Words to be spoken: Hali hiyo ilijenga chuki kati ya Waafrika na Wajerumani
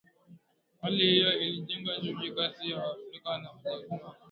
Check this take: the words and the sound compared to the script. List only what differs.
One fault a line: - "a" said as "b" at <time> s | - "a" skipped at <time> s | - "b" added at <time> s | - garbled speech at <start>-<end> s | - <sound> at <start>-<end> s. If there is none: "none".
none